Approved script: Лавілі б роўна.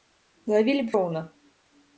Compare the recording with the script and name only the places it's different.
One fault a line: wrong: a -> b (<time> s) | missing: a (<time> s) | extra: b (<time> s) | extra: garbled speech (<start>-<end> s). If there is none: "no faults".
no faults